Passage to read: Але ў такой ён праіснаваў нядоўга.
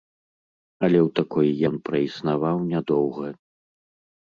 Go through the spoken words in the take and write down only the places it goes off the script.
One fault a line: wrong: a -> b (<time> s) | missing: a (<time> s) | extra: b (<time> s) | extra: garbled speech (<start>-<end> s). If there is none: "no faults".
no faults